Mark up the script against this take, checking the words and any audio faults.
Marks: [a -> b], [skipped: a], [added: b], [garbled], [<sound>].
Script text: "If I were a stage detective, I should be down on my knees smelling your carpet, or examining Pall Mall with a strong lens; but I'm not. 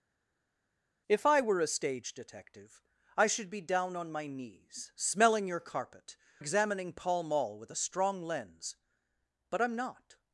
"If I were a stage detective, I should be down on my knees smelling your carpet, [skipped: or] examining Pall Mall with a strong lens; but I'm not.